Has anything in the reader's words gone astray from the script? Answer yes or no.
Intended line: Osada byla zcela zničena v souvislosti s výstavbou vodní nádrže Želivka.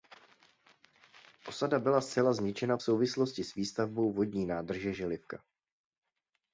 no